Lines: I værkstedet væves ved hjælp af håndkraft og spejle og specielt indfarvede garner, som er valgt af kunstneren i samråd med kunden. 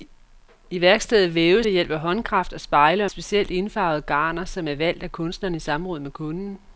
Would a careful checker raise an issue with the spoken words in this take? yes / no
no